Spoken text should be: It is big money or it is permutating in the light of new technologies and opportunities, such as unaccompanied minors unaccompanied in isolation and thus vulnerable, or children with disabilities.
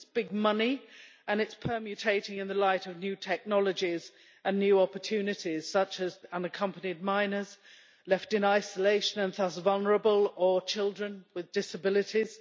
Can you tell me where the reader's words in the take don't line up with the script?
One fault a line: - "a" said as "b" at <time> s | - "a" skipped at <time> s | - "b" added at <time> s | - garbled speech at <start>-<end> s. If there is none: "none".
- "or" said as "and" at 1.3 s
- "new" added at 4.6 s
- "unaccompanied" said as "left" at 8.1 s